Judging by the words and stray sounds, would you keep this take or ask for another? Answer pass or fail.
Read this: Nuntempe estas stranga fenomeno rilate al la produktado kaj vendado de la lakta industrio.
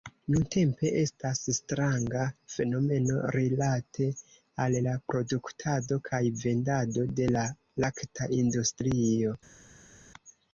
pass